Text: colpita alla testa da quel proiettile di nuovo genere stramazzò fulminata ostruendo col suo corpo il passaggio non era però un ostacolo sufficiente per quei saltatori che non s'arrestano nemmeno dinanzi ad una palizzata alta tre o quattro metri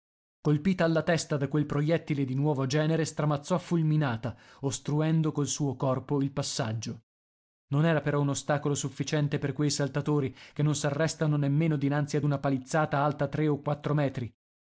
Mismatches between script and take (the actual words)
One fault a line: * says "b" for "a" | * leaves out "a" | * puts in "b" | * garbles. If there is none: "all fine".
all fine